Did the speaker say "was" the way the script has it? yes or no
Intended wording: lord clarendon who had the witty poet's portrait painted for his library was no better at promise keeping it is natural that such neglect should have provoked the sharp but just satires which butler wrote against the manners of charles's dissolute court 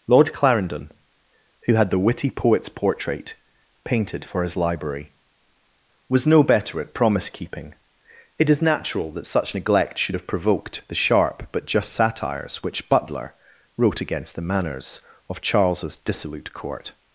yes